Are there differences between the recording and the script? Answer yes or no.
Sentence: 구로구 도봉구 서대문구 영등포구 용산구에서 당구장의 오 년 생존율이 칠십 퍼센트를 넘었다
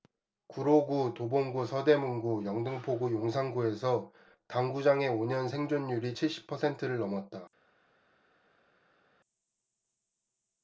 no